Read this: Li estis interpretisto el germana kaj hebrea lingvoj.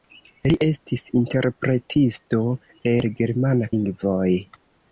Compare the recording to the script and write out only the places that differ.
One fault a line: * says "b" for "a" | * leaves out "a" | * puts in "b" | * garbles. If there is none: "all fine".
* leaves out "kaj hebrea"